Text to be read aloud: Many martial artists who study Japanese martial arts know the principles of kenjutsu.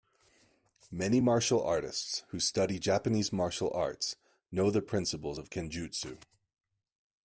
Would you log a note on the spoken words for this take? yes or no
no